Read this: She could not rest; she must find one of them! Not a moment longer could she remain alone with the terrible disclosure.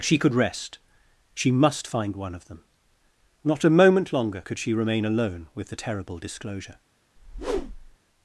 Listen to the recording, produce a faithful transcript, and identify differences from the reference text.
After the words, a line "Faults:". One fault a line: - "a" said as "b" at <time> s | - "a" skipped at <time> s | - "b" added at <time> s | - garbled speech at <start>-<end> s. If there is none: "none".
She could rest; she must find one of them! Not a moment longer could she remain alone with the terrible disclosure.
Faults:
- "not" skipped at 0.3 s